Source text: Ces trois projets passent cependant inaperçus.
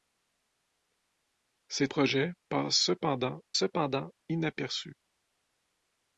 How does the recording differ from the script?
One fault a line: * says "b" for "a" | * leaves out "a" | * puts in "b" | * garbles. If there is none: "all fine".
* leaves out "trois"
* puts in "cependant"